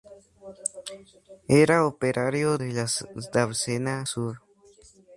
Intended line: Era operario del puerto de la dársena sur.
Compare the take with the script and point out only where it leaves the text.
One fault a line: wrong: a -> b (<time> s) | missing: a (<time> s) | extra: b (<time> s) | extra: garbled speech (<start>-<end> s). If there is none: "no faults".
missing: del puerto (2.6 s)